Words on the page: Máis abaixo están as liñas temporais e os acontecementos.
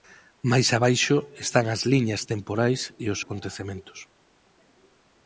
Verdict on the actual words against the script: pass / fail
pass